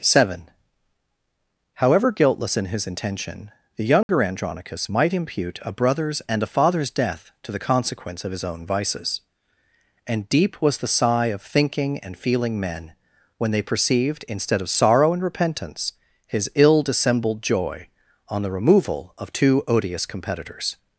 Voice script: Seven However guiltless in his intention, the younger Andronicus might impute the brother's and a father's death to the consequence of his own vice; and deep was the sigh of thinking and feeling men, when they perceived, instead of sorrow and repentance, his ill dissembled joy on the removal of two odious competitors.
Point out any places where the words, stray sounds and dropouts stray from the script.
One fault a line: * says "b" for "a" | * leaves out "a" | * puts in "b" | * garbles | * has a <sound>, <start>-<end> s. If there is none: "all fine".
* has a dropout, 4.0-4.1 s
* says "a" for "the"
* says "vices" for "vice"